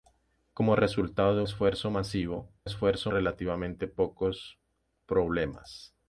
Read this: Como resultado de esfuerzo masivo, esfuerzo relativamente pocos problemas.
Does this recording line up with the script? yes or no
yes